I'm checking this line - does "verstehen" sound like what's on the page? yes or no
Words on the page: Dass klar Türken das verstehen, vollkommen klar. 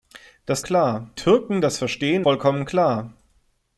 yes